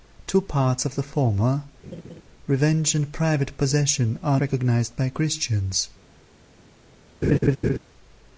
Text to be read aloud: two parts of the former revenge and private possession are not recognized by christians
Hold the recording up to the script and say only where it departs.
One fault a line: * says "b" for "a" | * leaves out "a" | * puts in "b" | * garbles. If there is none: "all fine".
* leaves out "not"